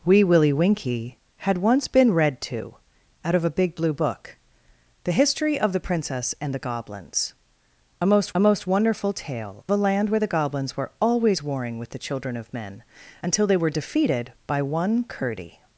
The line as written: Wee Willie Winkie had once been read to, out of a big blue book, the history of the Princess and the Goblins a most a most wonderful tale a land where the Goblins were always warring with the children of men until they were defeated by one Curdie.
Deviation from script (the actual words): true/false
false